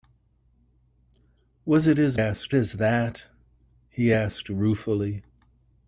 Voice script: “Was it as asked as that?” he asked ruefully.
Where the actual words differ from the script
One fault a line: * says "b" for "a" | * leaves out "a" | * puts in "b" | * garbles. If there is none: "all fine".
all fine